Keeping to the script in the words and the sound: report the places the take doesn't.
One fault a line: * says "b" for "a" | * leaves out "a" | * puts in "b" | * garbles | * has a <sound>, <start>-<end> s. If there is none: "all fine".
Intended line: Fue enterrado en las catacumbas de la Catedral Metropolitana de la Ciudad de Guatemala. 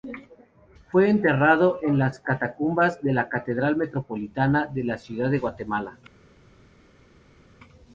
all fine